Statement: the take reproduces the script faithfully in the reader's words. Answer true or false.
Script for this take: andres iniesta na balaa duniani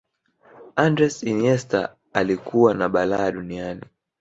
false